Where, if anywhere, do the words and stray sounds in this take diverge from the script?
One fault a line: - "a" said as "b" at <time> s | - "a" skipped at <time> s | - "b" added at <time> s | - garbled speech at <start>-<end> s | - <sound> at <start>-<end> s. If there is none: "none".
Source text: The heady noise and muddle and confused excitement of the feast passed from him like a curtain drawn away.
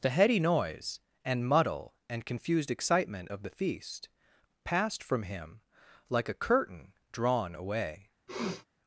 - sniff at 8.3-8.7 s